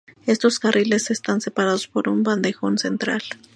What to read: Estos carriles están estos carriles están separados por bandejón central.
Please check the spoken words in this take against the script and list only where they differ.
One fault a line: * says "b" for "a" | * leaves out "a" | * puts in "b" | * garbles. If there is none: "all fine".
* leaves out "estos carriles están"
* puts in "un"